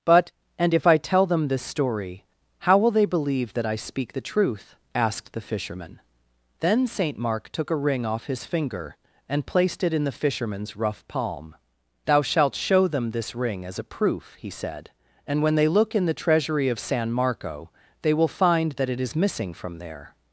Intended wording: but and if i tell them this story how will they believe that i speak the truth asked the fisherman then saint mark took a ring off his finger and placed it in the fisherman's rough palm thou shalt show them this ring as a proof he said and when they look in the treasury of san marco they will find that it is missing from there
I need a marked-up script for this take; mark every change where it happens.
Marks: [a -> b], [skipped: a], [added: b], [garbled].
but and if i tell them this story how will they believe that i speak the truth asked the fisherman then saint mark took a ring off his finger and placed it in the fisherman's rough palm thou shalt show them this ring as a proof he said and when they look in the treasury of san marco they will find that it is missing from there